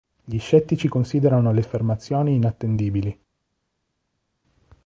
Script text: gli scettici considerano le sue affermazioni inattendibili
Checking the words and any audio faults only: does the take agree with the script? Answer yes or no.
no